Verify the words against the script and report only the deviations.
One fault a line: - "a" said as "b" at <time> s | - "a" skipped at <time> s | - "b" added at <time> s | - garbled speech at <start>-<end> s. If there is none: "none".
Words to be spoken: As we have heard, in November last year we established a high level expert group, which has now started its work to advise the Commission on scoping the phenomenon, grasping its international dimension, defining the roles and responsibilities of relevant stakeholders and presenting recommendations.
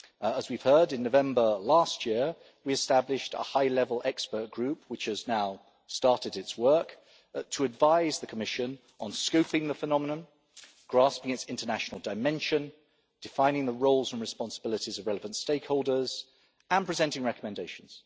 none